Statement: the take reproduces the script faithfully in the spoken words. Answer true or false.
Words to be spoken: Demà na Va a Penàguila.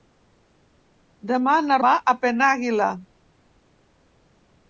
true